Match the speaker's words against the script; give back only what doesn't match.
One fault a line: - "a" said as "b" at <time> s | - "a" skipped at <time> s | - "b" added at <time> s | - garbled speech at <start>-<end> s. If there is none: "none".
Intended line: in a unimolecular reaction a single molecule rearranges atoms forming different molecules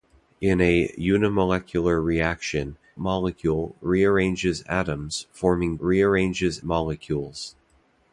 - "a single" skipped at 2.8 s
- "different" said as "rearranges" at 5.8 s